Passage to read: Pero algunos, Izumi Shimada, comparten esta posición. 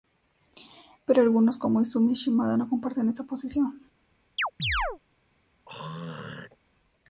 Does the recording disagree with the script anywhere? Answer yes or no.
yes